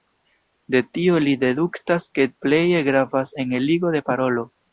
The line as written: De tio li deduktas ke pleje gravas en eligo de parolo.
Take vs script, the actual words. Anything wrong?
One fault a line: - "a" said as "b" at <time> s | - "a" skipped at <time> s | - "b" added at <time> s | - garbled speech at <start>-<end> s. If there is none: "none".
none